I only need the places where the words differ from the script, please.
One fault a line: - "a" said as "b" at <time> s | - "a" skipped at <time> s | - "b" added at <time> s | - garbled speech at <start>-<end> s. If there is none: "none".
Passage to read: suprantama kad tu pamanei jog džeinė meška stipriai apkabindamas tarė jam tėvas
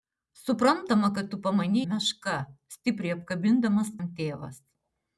- "jog džeinė" skipped at 1.8 s
- "tarė" skipped at 4.0 s